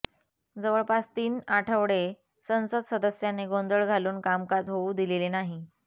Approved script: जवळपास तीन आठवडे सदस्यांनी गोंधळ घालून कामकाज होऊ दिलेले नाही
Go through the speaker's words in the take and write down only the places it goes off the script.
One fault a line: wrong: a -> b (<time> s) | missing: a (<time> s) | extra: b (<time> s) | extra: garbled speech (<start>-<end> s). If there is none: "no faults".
extra: संसद (2.5 s)